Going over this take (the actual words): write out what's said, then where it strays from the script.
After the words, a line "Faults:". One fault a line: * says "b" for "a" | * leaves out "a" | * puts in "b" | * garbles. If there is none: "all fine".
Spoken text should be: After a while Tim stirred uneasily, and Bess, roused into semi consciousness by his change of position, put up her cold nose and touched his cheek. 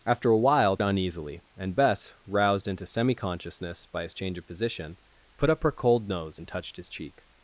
After a while Uneasily, and Bess, roused into semi consciousness by his change of position, put up her cold nose and touched his cheek.
Faults:
* leaves out "Tim stirred"